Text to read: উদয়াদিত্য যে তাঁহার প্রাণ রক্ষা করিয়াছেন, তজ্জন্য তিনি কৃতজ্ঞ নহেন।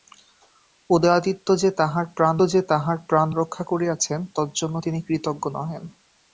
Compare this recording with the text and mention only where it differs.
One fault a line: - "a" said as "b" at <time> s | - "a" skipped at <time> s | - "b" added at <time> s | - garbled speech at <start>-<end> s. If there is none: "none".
- "যে তাঁহার প্রাণ" added at 2.5 s